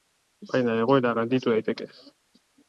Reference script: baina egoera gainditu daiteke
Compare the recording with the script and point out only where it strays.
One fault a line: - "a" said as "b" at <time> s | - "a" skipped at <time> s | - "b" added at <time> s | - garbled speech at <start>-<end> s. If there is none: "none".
none